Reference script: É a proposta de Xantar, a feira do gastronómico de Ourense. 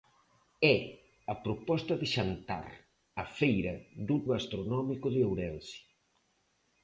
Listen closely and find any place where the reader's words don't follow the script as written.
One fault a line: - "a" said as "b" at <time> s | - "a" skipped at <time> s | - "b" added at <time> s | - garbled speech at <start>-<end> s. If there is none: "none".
none